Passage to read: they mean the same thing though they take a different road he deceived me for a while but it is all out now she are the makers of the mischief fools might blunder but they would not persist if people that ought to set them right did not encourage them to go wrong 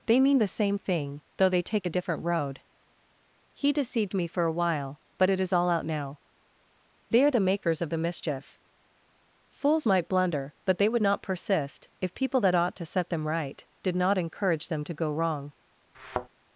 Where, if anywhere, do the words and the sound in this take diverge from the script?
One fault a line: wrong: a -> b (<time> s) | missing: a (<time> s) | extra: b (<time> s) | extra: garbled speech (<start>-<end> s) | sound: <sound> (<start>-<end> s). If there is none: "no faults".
wrong: she -> they (7.1 s)
sound: thud (15.9-16.3 s)